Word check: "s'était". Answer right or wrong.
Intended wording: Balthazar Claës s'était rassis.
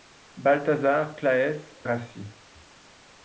wrong